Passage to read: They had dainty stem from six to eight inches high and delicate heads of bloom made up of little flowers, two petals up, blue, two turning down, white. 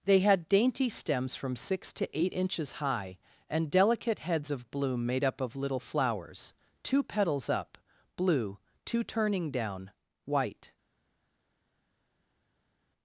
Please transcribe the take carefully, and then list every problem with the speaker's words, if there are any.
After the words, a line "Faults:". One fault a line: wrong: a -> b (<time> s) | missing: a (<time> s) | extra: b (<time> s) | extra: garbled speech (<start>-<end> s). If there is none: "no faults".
They had dainty stems from six to eight inches high and delicate heads of bloom made up of little flowers, two petals up, blue, two turning down, white.
Faults:
wrong: stem -> stems (0.9 s)